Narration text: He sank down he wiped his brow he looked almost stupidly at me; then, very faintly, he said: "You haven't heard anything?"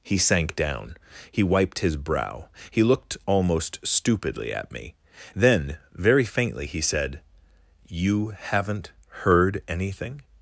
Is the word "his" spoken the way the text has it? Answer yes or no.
yes